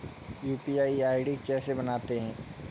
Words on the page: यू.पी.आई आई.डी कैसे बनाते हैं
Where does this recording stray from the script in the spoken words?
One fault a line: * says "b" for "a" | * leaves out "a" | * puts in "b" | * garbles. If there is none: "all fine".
all fine